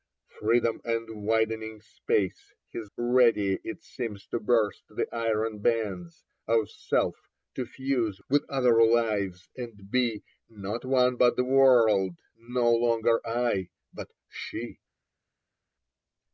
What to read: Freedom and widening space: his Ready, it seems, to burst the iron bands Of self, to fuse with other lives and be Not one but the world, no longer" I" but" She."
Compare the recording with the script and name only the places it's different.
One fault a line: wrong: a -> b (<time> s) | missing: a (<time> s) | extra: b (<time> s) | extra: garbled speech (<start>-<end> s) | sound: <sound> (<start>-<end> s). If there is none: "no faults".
no faults